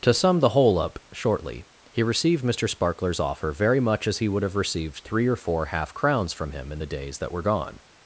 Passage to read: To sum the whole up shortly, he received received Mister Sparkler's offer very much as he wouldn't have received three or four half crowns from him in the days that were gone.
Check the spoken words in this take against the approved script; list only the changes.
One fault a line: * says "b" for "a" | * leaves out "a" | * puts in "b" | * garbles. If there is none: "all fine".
* leaves out "received"
* says "would" for "wouldn't"